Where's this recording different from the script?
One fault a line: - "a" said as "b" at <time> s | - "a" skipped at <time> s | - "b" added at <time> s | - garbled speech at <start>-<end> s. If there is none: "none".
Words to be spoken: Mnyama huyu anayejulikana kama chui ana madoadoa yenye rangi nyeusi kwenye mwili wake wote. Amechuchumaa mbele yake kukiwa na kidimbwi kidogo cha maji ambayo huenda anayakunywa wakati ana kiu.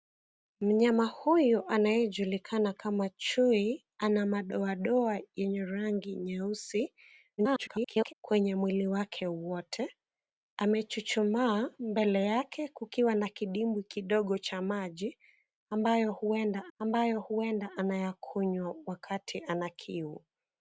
- garbled speech at 7.4-8.1 s
- "ambayo huenda" added at 16.8 s